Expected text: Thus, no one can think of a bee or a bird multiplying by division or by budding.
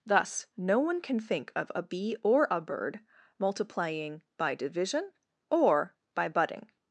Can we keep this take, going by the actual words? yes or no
yes